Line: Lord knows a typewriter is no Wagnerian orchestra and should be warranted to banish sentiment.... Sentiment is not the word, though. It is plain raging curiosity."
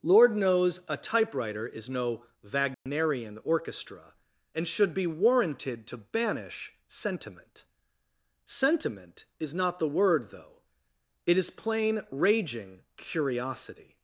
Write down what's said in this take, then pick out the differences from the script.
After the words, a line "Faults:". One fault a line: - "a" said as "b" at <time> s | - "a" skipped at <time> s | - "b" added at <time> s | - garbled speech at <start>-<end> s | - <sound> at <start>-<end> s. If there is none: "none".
Lord knows a typewriter is no Wagnerian orchestra and should be warranted to banish sentiment.... Sentiment is not the word, though. It is plain raging curiosity."
Faults:
- dropout at 2.7-2.9 s